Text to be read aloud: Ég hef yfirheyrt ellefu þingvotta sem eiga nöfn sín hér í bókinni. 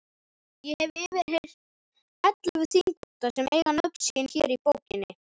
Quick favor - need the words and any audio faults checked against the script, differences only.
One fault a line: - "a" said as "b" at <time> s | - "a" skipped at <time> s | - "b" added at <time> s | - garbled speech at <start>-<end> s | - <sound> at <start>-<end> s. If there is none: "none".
- dropout at 3.0-3.2 s